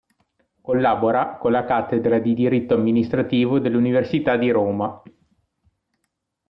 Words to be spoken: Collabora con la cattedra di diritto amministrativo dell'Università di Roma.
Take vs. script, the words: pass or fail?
pass